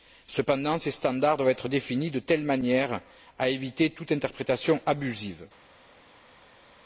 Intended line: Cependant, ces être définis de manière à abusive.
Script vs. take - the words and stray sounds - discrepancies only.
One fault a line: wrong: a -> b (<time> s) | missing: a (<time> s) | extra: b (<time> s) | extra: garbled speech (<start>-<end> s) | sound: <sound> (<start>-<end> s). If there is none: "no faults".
extra: standards doivent (0.9 s)
extra: telle (2.2 s)
extra: éviter toute interprétation (3.5 s)